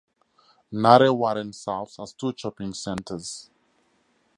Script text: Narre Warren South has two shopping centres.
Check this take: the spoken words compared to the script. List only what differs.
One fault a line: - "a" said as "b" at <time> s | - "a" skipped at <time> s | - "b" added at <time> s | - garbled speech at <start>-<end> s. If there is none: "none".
none